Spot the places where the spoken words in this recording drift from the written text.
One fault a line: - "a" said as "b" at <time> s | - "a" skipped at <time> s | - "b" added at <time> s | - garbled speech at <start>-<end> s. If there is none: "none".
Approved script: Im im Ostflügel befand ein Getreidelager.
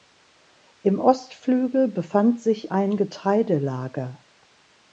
- "im" skipped at 1.0 s
- "sich" added at 2.4 s